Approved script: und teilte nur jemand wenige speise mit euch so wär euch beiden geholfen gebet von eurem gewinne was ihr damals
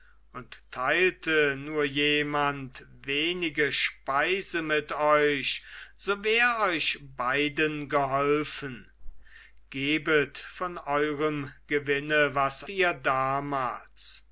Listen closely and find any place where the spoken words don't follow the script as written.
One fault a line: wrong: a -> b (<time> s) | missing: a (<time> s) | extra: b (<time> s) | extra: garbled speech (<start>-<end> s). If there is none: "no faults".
no faults